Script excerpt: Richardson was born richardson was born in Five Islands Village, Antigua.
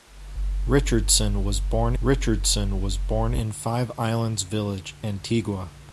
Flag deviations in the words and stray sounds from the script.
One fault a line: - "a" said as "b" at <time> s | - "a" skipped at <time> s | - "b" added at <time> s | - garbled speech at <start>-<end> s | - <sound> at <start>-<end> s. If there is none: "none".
none